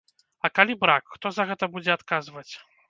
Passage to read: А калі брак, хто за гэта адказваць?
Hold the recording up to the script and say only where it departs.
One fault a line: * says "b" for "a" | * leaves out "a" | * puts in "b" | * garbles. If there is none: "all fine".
* puts in "будзе"